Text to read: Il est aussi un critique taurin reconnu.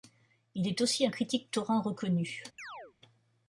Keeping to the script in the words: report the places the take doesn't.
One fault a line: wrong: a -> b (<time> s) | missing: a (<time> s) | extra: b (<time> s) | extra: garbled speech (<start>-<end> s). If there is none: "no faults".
no faults